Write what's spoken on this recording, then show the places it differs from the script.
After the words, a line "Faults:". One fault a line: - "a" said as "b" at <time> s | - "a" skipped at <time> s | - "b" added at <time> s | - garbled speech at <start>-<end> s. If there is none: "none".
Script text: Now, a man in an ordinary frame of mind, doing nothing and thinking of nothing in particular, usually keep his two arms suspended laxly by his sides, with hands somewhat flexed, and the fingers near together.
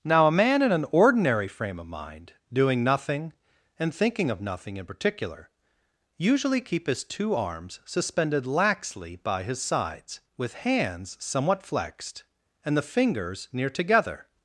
Now, a man in an ordinary frame of mind, doing nothing and thinking of nothing in particular, usually keep his two arms suspended laxly by his sides, with hands somewhat flexed, and the fingers near together.
Faults:
none